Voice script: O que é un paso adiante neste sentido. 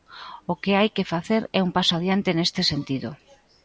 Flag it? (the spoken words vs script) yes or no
yes